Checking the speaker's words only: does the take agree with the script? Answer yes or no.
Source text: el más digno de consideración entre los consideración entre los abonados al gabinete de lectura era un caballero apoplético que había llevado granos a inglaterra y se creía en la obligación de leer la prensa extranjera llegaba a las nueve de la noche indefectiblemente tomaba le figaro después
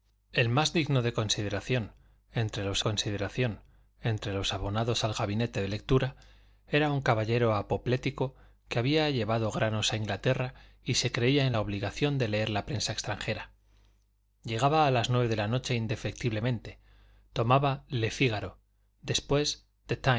yes